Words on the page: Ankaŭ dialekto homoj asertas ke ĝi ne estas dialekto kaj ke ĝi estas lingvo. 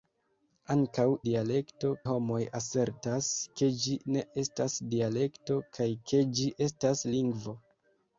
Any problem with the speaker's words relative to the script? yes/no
no